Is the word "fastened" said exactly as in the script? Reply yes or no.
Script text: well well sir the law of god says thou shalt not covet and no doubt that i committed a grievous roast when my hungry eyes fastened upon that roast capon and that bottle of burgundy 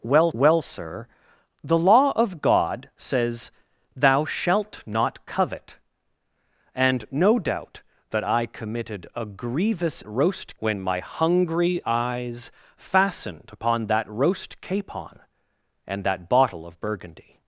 yes